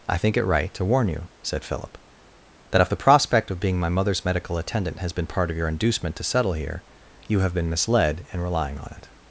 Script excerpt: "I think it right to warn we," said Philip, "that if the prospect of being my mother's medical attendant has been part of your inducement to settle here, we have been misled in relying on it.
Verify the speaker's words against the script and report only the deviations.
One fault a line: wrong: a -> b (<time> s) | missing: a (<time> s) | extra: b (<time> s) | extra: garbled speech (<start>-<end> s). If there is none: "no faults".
wrong: we -> you (1.1 s)
wrong: we -> you (7.3 s)